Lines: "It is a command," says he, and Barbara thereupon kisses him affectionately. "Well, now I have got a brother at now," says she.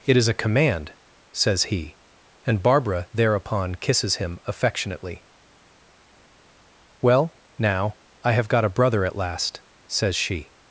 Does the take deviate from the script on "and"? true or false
false